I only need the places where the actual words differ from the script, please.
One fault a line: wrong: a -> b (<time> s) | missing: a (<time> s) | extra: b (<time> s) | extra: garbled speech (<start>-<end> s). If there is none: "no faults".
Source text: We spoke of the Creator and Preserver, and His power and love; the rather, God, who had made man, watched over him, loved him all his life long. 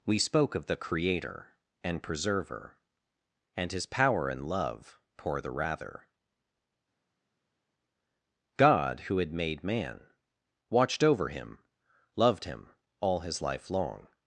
extra: pour (5.2 s)